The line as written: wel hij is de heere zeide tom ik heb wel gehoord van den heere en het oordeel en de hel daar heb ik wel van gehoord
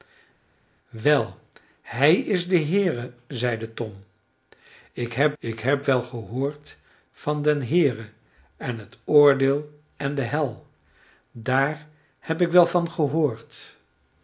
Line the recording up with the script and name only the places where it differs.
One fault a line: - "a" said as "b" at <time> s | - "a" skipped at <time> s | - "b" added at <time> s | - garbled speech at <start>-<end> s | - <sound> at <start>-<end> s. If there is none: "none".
- "ik heb" added at 5.4 s